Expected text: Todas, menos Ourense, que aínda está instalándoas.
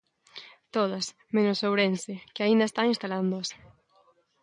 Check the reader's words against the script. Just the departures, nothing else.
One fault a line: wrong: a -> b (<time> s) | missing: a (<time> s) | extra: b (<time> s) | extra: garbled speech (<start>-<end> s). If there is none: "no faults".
no faults